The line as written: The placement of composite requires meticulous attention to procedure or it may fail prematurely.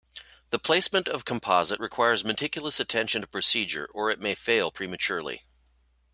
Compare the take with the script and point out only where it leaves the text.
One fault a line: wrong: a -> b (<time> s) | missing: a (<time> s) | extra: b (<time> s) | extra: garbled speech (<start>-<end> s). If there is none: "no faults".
no faults